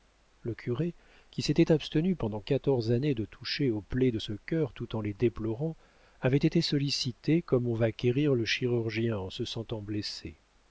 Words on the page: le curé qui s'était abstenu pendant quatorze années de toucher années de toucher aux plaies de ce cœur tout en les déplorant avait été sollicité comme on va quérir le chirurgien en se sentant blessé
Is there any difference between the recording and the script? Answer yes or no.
yes